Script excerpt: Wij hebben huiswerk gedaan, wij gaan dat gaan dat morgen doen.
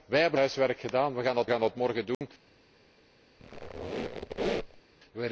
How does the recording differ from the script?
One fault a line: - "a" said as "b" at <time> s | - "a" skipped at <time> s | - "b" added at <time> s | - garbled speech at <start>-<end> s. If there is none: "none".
none